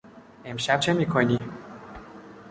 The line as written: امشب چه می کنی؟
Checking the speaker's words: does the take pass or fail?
pass